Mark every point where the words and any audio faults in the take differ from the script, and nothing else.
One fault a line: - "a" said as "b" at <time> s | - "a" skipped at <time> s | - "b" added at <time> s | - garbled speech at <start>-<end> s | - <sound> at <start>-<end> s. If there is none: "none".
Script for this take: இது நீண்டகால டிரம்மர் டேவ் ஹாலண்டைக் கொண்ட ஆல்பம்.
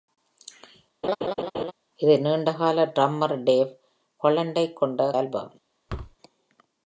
- laugh at 1.0-1.7 s
- thud at 5.9-6.2 s